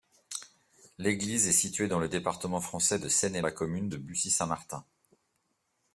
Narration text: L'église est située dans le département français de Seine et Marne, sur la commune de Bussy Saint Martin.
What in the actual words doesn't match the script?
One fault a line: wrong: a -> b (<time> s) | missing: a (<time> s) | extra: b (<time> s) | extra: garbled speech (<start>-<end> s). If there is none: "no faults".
missing: Marne sur (3.4 s)